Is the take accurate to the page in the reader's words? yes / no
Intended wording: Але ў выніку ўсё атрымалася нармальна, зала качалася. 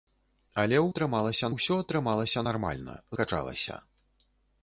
no